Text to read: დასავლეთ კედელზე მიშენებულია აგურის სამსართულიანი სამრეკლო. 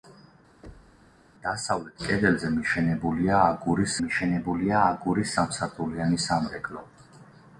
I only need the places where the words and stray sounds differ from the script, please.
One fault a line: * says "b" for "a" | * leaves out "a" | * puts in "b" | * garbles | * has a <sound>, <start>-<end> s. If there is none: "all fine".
* has a thud, 0.6-1.2 s
* puts in "მიშენებულია აგურის"